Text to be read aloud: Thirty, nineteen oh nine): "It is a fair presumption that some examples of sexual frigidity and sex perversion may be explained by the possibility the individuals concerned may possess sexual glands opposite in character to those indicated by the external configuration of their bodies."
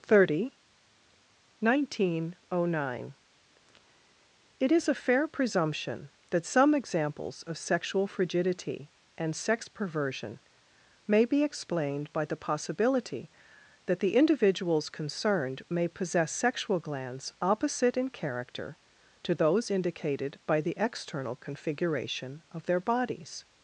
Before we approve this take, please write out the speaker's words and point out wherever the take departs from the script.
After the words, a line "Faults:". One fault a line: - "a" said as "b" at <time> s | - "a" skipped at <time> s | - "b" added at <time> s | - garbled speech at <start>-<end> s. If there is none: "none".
Thirty, nineteen oh nine): "It is a fair presumption that some examples of sexual frigidity and sex perversion may be explained by the possibility that the individuals concerned may possess sexual glands opposite in character to those indicated by the external configuration of their bodies."
Faults:
- "that" added at 13.8 s